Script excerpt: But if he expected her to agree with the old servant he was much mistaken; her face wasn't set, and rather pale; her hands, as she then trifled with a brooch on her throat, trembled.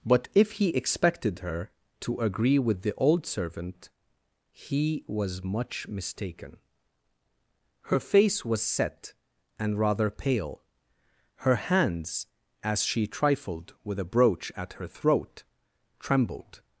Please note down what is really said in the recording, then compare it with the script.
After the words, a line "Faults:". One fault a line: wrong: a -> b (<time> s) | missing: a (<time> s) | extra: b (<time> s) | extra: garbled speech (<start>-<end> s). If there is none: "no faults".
But if he expected her to agree with the old servant he was much mistaken; her face was set, and rather pale; her hands, as she trifled with a brooch at her throat, trembled.
Faults:
wrong: wasn't -> was (8.4 s)
missing: then (13.1 s)
wrong: on -> at (14.6 s)